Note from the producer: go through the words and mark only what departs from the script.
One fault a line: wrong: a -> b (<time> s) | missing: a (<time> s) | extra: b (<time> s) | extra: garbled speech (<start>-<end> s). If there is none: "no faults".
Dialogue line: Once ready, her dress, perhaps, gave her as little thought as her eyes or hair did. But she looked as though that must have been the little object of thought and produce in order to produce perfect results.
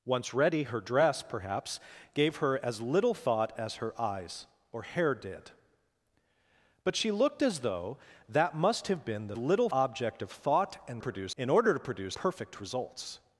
no faults